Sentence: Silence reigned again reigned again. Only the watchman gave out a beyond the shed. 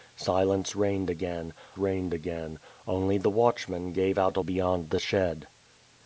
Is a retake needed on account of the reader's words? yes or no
no